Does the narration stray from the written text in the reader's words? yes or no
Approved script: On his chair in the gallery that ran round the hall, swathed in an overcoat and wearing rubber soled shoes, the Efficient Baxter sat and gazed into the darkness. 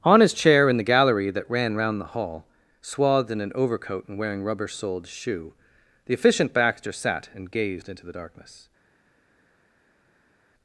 yes